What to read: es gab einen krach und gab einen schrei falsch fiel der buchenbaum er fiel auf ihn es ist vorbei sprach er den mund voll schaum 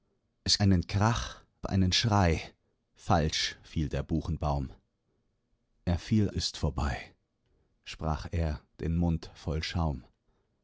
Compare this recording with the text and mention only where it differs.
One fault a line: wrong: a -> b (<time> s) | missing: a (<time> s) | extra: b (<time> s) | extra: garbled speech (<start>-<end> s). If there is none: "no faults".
missing: gab (0.6 s)
missing: und gab (1.4 s)
missing: auf ihn es (6.3 s)